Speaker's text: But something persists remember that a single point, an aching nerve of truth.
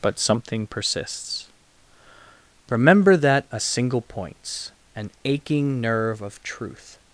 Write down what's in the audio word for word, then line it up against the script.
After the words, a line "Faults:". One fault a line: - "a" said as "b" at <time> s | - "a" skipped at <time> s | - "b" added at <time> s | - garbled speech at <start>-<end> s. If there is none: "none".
But something persists remember that a single points, an aching nerve of truth.
Faults:
- "point" said as "points" at 4.0 s